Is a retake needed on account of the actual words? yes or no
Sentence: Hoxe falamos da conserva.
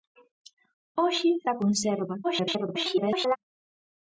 yes